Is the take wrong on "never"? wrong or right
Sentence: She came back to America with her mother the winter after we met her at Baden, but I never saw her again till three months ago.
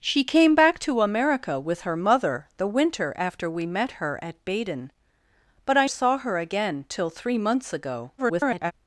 wrong